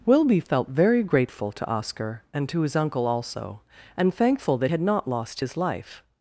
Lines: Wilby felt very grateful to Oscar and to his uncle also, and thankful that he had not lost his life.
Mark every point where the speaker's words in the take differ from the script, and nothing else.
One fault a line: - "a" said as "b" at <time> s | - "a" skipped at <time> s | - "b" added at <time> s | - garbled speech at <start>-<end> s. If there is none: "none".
- "he" skipped at 4.7 s